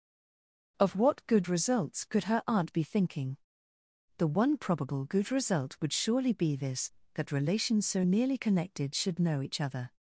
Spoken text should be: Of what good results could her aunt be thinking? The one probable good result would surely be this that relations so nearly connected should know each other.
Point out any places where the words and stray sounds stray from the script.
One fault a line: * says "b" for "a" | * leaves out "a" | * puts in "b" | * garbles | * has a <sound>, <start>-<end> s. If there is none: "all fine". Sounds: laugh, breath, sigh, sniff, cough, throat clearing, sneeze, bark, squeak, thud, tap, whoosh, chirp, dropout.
all fine